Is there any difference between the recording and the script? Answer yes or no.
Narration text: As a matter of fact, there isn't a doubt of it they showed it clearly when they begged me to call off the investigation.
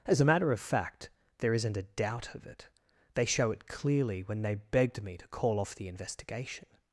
yes